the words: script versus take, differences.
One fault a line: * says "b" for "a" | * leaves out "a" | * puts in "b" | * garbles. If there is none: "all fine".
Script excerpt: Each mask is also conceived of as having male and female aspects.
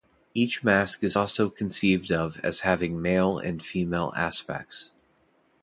all fine